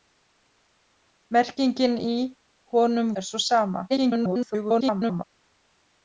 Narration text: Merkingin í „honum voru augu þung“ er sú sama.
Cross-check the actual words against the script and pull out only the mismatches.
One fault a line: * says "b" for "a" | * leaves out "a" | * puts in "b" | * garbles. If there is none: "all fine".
* leaves out "voru augu þung"
* garbles